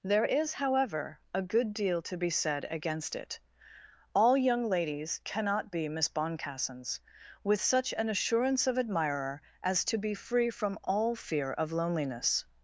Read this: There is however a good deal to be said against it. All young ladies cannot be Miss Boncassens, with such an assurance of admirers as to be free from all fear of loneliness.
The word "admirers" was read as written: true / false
false